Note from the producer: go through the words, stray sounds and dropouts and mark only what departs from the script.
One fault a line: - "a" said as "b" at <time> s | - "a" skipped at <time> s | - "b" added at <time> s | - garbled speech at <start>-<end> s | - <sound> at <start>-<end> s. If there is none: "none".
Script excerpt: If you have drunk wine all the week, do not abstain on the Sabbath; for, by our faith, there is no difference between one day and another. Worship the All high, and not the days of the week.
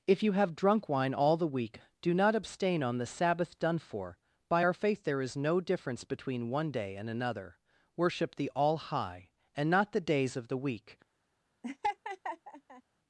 - "done" added at 3.6 s
- laugh at 11.6-12.8 s